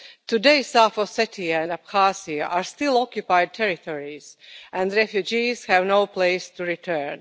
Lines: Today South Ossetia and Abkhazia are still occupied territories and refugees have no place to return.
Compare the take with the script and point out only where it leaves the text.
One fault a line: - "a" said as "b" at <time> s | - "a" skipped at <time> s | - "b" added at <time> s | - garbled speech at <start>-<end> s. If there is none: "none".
none